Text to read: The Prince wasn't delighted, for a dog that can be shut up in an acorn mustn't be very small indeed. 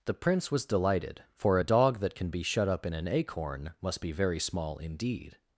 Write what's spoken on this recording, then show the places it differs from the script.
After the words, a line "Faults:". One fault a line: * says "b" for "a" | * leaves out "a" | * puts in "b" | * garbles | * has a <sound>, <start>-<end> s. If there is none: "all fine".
The Prince was delighted, for a dog that can be shut up in an acorn must be very small indeed.
Faults:
* says "was" for "wasn't"
* says "must" for "mustn't"